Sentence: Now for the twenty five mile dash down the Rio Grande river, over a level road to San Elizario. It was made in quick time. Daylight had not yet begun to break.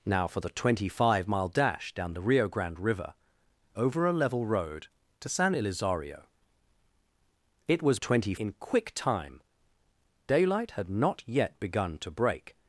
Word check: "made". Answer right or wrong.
wrong